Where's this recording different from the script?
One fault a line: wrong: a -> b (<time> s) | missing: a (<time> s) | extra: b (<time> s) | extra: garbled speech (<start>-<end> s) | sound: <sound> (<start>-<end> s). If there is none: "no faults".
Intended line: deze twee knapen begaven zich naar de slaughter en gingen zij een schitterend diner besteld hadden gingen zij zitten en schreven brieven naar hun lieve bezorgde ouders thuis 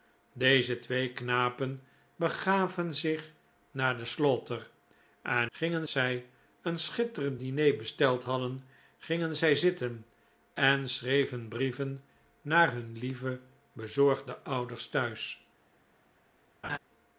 sound: laugh (16.6-16.8 s)